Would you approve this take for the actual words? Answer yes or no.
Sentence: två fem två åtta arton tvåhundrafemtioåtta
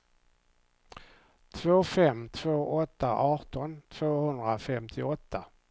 yes